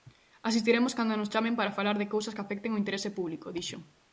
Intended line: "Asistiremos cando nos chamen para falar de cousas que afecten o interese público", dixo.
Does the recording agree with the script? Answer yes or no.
yes